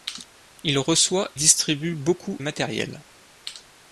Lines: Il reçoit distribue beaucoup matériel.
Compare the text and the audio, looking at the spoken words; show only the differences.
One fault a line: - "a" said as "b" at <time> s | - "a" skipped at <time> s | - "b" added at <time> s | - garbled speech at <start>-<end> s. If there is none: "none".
none